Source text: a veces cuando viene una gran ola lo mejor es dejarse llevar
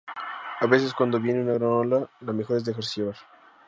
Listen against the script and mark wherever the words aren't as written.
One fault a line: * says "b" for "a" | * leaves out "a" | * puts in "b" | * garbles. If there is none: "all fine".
all fine